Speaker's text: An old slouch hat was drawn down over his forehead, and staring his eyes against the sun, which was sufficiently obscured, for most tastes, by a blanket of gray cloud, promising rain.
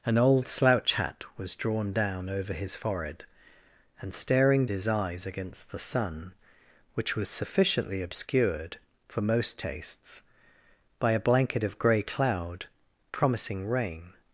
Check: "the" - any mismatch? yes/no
no